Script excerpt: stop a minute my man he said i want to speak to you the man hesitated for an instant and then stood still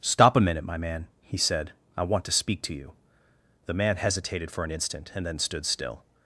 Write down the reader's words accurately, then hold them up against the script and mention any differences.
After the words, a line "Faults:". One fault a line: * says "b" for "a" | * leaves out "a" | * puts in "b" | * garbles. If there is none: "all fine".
stop a minute my man he said i want to speak to you the man hesitated for an instant and then stood still
Faults:
all fine